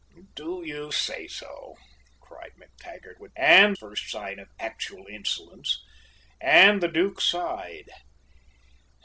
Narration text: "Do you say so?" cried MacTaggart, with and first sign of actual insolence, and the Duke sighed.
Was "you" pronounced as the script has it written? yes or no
yes